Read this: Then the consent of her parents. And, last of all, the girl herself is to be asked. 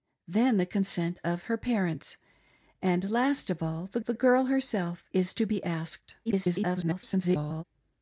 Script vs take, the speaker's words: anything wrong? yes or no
yes